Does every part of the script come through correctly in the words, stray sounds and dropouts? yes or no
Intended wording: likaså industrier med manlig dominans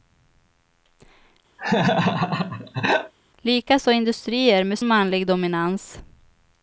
no